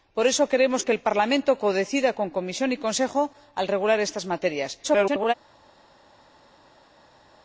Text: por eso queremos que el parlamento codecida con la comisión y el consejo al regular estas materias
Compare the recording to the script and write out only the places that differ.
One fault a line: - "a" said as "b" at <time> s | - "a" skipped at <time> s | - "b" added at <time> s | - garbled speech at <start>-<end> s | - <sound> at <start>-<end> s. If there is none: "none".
- garbled speech at 4.8-5.3 s